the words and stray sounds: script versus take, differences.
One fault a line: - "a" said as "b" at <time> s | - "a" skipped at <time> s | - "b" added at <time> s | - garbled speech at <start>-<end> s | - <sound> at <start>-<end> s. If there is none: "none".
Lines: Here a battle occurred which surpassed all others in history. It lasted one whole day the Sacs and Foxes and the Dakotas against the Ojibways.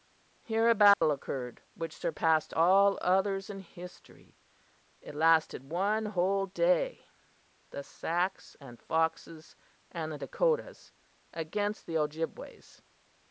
- dropout at 0.9-1.0 s